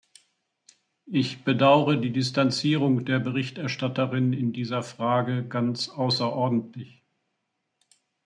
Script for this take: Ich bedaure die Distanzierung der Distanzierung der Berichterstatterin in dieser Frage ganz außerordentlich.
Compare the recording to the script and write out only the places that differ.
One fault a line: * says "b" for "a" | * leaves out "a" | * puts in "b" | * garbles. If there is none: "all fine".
* leaves out "Distanzierung der"